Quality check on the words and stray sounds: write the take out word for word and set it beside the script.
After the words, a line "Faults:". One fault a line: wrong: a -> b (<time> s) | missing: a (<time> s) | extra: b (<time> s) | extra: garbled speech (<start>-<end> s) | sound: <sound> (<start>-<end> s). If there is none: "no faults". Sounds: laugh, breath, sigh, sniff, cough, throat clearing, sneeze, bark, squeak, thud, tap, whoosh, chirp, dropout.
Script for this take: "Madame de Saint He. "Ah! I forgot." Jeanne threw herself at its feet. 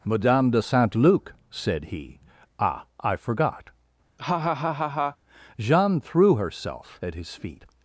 "Madame de Saint Luc!" said he. "Ah! I forgot." Jeanne threw herself at his feet.
Faults:
extra: Luc said (0.9 s)
sound: laugh (4.2-5.2 s)
wrong: its -> his (7.1 s)